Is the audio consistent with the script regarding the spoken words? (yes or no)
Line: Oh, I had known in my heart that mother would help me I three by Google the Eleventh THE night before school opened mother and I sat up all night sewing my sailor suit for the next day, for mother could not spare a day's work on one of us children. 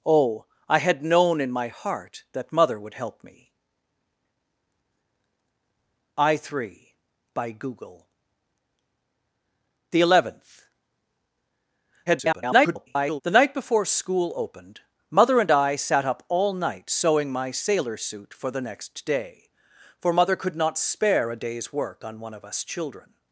no